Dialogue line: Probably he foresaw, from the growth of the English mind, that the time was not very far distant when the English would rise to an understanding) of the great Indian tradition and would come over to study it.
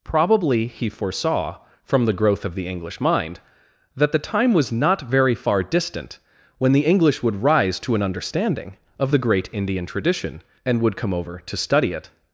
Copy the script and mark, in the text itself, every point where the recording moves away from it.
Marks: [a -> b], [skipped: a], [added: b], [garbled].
Probably he foresaw, from the growth of the English mind, that the time was not very far distant when the English would rise to an understanding) of the great Indian tradition and would come over to study it.